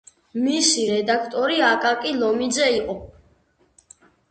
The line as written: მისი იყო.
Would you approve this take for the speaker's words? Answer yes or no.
no